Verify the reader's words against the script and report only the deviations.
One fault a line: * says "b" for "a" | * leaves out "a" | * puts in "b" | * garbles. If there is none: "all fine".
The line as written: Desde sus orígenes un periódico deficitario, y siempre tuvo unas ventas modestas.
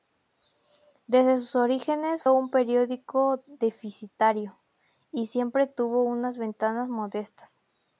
all fine